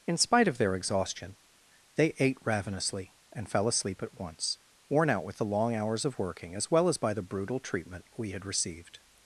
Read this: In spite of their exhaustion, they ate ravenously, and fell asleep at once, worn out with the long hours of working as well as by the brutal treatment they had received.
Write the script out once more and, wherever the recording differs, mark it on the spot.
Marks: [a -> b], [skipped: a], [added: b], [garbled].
In spite of their exhaustion, they ate ravenously, and fell asleep at once, worn out with the long hours of working as well as by the brutal treatment [they -> we] had received.